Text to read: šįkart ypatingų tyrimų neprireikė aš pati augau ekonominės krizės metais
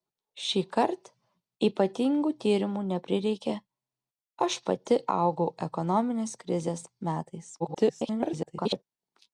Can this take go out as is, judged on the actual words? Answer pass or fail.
fail